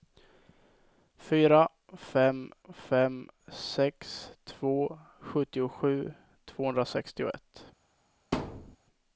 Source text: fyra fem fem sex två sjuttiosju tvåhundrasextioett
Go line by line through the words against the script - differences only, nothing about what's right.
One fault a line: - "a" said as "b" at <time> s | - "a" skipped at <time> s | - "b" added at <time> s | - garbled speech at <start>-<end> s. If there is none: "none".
none